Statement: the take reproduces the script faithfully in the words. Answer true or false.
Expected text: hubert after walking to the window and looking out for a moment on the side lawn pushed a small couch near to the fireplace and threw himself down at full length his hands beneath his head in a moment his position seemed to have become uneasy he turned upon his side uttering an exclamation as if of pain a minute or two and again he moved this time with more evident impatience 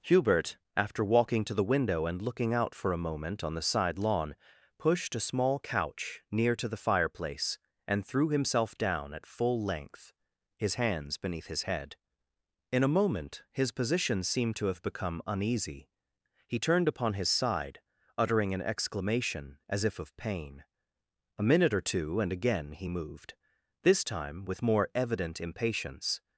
true